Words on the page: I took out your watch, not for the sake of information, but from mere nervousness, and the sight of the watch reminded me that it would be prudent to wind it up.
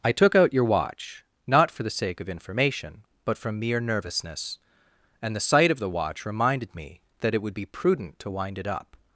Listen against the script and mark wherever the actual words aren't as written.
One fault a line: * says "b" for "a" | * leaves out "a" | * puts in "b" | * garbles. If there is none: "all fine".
all fine